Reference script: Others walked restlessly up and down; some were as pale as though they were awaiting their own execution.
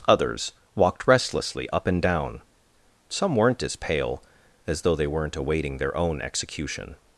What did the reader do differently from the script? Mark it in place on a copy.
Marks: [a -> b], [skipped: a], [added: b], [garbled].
Others walked restlessly up and down; some [were -> weren't] as pale as though they [were -> weren't] awaiting their own execution.